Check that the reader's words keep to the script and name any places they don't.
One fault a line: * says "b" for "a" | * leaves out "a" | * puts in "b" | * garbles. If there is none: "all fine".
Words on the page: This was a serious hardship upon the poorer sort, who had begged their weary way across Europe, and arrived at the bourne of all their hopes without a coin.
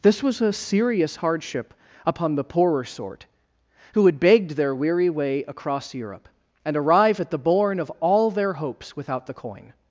* says "arrive" for "arrived"
* says "the" for "a"